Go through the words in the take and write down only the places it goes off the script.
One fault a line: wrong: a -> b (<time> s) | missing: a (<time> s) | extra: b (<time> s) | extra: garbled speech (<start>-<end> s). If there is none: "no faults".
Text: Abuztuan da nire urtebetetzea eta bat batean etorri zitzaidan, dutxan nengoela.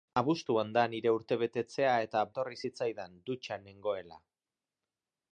missing: bat batean (2.2 s)